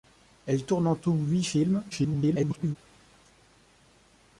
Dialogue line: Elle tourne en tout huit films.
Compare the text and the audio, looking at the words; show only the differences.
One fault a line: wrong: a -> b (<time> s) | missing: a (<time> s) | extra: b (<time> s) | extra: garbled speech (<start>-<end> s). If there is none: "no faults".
extra: garbled speech (1.9-2.8 s)